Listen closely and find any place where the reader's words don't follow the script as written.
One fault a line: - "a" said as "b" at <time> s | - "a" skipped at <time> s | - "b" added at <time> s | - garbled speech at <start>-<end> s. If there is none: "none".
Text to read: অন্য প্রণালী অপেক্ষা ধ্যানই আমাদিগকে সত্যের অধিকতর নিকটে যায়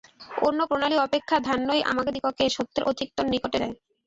none